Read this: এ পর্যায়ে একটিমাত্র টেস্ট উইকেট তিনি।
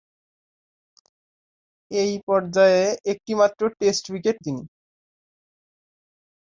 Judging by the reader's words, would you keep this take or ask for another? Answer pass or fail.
pass